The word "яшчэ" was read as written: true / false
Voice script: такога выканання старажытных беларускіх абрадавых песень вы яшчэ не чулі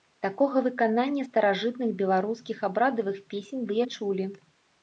false